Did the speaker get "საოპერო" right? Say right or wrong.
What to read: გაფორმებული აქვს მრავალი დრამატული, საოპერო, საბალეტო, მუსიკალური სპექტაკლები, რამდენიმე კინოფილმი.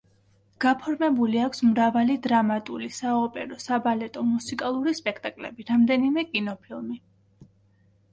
right